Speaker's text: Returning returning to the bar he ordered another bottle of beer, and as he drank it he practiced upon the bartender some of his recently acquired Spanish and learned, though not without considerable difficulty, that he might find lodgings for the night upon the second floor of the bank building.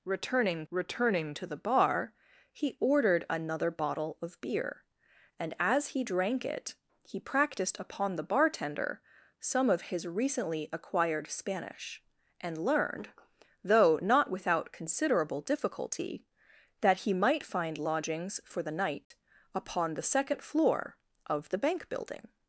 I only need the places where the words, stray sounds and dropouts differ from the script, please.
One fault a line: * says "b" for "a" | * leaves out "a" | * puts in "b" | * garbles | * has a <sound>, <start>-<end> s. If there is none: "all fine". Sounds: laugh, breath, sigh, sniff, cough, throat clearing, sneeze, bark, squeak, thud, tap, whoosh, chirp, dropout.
* has a dropout, 19.0-19.1 s